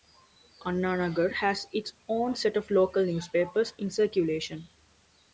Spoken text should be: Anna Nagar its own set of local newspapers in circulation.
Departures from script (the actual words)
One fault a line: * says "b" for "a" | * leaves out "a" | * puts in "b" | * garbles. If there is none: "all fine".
* puts in "has"